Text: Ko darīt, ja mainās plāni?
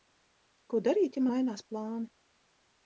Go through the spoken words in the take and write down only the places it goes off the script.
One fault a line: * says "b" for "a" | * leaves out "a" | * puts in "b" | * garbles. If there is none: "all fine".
all fine